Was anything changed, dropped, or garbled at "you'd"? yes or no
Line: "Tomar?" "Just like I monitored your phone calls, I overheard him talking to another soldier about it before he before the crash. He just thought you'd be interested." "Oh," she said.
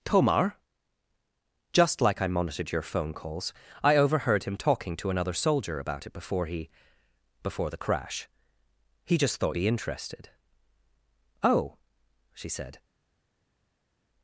yes